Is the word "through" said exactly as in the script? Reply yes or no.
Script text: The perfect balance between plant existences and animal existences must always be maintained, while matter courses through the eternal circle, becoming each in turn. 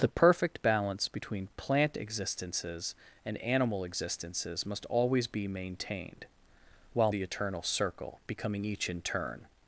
no